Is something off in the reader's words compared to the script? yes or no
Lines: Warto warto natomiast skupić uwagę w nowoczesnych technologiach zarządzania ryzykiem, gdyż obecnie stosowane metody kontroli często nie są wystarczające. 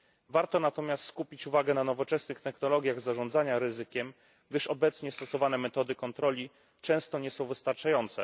yes